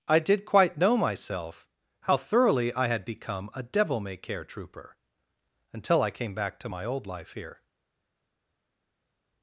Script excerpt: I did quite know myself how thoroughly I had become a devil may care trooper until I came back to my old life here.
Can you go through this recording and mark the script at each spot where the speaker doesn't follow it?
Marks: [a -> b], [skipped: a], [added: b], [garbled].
I did quite know myself how thoroughly I had become a devil may care trooper until I came back to my old life here.